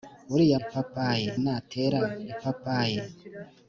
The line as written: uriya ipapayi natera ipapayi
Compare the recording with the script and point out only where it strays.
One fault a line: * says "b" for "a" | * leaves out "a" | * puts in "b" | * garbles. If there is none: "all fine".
all fine